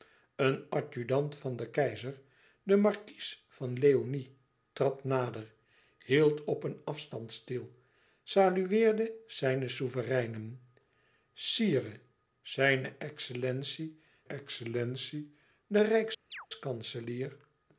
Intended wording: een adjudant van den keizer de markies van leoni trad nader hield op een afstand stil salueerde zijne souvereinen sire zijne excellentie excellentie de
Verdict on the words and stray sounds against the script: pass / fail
fail